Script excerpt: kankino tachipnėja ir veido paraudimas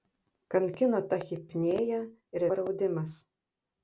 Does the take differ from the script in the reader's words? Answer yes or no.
yes